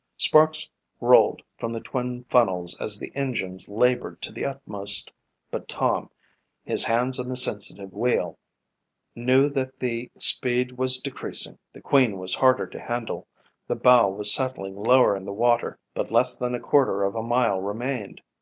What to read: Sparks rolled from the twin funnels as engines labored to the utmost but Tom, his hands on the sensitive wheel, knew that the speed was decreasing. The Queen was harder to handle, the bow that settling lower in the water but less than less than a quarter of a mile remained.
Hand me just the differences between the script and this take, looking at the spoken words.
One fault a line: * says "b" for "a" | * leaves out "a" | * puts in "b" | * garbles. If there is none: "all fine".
* puts in "the"
* says "was" for "that"
* leaves out "less than"